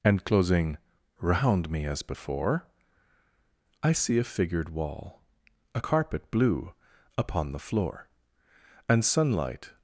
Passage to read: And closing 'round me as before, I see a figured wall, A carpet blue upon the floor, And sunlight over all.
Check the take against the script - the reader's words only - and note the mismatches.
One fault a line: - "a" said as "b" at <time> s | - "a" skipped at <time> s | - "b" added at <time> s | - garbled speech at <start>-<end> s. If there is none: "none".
- "over all" skipped at 9.7 s